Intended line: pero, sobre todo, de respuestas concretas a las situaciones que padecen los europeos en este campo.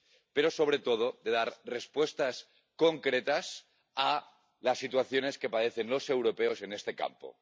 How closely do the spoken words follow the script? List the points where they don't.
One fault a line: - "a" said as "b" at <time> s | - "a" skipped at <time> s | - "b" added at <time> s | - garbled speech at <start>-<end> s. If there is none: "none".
- "dar" added at 1.3 s